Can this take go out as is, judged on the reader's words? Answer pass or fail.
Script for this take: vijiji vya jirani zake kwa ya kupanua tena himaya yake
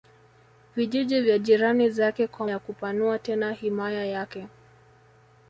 pass